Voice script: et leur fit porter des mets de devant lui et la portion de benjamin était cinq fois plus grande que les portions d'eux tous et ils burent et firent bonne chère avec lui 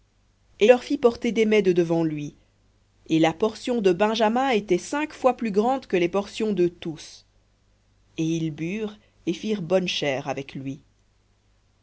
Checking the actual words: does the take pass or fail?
pass